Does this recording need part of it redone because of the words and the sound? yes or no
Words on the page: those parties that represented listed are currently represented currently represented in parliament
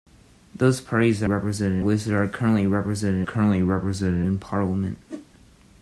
yes